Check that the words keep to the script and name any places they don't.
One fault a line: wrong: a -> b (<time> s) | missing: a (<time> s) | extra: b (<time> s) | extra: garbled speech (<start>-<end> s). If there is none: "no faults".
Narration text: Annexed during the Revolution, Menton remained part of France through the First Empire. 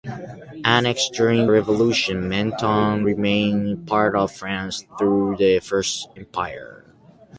missing: the (1.5 s)